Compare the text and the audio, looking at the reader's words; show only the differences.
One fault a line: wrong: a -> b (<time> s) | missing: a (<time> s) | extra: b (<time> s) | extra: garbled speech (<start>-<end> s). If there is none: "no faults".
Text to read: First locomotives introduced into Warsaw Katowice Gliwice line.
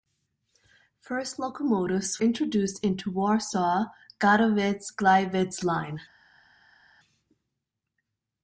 no faults